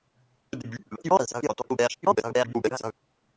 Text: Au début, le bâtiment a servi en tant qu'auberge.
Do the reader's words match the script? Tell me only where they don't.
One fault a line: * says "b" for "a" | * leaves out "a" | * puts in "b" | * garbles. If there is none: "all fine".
* garbles